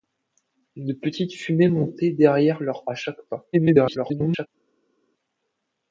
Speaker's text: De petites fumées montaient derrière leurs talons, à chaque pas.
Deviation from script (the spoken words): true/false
true